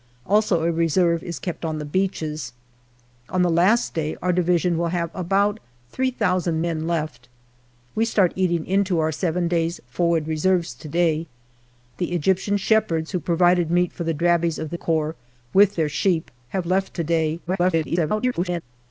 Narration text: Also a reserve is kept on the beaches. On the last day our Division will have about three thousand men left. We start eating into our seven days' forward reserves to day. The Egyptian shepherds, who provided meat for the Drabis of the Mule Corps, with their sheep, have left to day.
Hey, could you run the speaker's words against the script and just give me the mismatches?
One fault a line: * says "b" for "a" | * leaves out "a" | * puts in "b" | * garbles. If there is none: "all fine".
* leaves out "Mule"
* garbles